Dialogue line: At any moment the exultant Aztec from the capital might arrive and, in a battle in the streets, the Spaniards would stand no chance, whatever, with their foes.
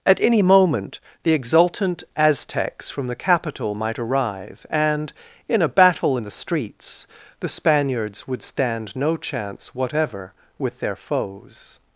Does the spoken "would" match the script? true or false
true